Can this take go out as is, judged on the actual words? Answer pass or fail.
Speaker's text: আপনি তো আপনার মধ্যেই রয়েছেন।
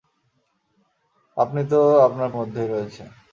pass